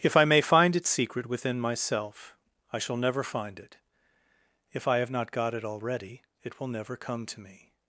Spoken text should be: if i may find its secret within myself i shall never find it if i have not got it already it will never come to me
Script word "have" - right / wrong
right